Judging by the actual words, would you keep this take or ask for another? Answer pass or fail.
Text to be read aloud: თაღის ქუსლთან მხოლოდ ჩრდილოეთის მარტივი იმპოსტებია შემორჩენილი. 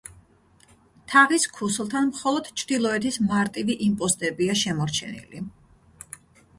pass